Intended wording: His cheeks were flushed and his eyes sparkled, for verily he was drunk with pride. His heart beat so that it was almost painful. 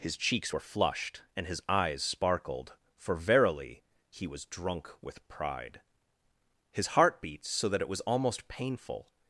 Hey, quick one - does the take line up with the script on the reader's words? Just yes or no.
yes